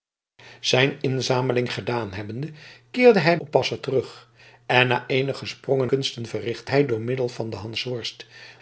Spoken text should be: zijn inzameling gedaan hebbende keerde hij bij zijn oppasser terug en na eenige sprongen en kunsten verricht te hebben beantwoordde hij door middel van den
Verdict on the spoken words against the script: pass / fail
fail